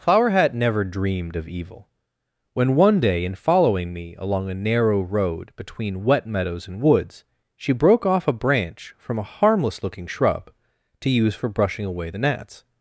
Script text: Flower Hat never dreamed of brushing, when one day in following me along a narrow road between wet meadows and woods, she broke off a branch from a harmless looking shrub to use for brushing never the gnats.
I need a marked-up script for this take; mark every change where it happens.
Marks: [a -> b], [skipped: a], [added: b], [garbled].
Flower Hat never dreamed of [brushing, -> evil] when one day in following me along a narrow road between wet meadows and woods, she broke off a branch from a harmless looking shrub to use for brushing [never -> away] the gnats.